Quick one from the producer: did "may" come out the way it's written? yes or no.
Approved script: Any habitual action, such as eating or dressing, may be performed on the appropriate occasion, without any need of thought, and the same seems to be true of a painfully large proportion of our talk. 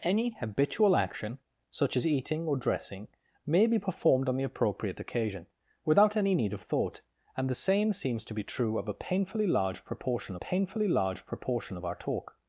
yes